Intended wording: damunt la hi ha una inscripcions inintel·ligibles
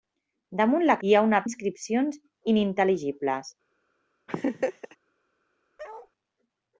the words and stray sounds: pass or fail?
fail